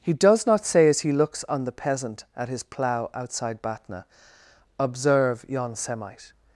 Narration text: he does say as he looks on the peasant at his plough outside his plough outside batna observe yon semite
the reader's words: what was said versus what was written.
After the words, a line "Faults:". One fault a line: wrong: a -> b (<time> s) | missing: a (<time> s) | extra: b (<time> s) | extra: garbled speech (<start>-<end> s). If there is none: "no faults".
he does not say as he looks on the peasant at his plough outside batna observe yon semite
Faults:
extra: not (0.5 s)
missing: his plough outside (3.6 s)